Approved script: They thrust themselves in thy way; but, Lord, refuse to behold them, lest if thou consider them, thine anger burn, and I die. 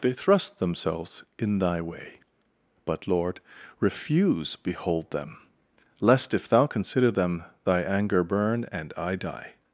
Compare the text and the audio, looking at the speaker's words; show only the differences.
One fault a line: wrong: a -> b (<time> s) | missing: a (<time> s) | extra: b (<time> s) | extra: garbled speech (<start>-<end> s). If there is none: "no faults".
missing: to (4.5 s)
wrong: thine -> thy (7.7 s)